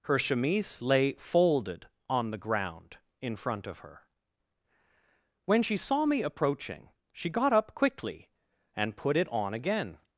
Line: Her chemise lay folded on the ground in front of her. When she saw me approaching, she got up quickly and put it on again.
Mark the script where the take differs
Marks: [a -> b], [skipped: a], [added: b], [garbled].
Her chemise lay folded on the ground in front of her. When she saw me approaching, she got up quickly and put it on again.